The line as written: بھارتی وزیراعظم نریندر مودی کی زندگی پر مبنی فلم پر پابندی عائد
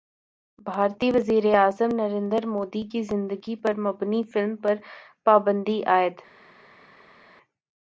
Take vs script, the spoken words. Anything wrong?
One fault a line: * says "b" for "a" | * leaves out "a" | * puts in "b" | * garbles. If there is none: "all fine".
all fine